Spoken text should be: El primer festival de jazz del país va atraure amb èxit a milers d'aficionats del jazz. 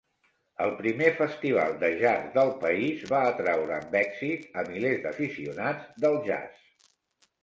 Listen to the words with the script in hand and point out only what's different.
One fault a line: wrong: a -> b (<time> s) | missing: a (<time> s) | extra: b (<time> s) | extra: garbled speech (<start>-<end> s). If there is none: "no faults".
no faults